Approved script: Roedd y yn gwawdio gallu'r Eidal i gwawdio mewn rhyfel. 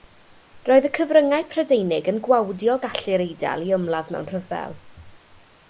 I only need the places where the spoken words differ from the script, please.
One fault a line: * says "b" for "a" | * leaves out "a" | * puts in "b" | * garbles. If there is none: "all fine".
* puts in "cyfryngau Prydeinig"
* says "ymladd" for "gwawdio"